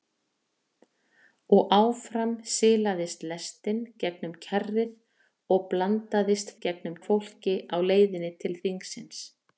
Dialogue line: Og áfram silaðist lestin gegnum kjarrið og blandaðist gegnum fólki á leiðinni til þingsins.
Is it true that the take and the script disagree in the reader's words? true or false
false